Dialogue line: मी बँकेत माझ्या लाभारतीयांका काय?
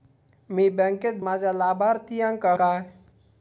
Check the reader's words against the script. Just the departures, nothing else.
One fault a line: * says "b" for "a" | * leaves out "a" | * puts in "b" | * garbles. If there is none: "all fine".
all fine